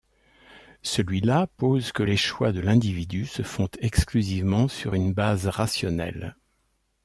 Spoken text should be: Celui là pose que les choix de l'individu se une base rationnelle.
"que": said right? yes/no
yes